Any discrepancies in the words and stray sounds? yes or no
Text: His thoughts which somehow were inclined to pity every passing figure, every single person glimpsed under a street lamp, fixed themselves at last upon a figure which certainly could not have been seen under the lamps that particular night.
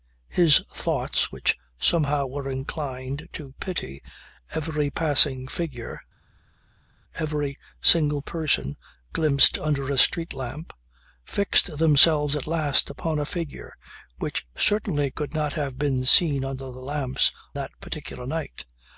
no